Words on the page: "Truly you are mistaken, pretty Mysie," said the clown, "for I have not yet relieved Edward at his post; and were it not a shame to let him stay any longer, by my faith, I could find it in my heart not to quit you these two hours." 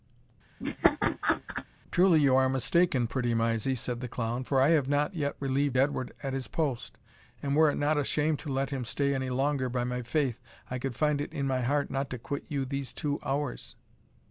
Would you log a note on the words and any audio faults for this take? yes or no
yes